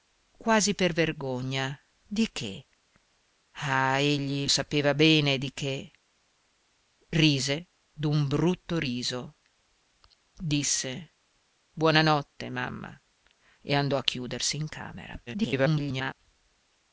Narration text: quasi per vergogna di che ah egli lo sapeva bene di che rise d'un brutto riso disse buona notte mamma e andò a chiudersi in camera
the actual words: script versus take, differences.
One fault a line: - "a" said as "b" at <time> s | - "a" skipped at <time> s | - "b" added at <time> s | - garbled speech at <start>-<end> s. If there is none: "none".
- "lo" skipped at 4.5 s
- garbled speech at 15.3-16.1 s